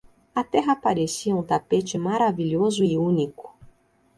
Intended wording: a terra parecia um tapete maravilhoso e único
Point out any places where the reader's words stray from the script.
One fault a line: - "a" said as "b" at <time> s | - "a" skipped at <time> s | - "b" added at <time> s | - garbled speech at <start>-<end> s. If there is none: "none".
none